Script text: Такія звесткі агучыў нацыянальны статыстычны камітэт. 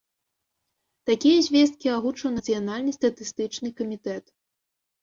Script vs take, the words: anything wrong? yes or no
no